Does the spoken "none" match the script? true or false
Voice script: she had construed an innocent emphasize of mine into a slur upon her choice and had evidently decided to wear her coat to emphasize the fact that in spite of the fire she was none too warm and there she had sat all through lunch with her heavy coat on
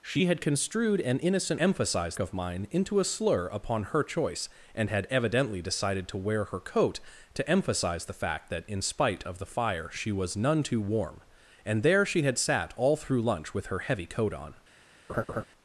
true